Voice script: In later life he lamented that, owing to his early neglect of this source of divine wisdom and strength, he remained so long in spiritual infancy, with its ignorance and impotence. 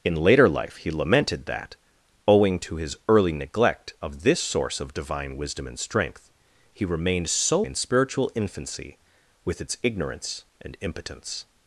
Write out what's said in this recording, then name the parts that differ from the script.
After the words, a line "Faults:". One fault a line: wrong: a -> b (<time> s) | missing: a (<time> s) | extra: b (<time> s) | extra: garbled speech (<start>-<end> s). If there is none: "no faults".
In later life he lamented that, owing to his early neglect of this source of divine wisdom and strength, he remained so in spiritual infancy, with its ignorance and impotence.
Faults:
missing: long (7.6 s)